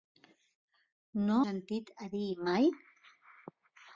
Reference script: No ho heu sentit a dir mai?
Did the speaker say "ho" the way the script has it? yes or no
no